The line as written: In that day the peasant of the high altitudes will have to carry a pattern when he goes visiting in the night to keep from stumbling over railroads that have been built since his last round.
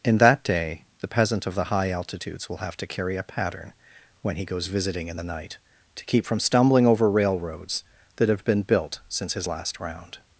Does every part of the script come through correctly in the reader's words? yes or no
yes